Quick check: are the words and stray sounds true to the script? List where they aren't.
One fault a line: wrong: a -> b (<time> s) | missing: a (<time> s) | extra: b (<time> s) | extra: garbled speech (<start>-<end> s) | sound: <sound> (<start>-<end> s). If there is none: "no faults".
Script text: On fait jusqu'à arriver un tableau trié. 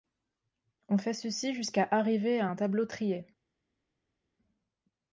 extra: ceci (1.1 s)
extra: à (2.4 s)